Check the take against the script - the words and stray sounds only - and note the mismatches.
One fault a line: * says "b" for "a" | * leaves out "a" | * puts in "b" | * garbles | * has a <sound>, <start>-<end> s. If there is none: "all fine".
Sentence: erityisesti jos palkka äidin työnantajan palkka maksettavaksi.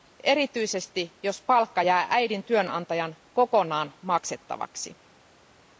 * puts in "jää"
* says "kokonaan" for "palkka"